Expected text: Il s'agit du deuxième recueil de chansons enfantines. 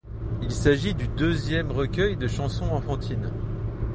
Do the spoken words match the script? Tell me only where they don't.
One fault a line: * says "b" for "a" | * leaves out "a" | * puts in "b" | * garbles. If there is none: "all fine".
all fine